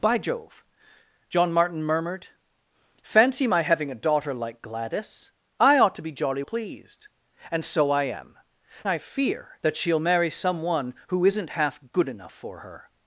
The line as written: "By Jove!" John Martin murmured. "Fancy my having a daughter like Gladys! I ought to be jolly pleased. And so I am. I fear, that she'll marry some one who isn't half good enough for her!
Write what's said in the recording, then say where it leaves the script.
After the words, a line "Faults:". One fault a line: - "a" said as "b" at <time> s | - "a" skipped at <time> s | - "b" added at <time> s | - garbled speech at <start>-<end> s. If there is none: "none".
"By Jove!" John Martin murmured. "Fancy my having a daughter like Gladys! I ought to be jolly pleased. And so I am. I fear, that she'll marry some one who isn't half good enough for her!
Faults:
none